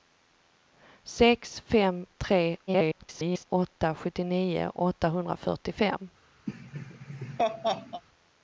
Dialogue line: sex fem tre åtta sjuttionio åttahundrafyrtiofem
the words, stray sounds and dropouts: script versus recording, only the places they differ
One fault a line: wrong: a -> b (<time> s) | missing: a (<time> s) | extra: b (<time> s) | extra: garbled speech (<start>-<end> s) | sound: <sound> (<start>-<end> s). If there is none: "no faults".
extra: garbled speech (2.7-3.4 s)
sound: laugh (6.5-8.0 s)